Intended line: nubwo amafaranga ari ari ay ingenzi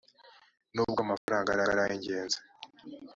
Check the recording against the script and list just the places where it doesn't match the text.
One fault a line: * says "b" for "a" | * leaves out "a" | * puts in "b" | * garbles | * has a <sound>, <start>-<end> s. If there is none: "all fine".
* has a dropout, 1.2-1.3 s